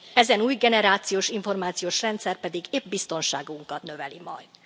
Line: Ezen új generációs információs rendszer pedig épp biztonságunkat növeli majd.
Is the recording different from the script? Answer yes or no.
no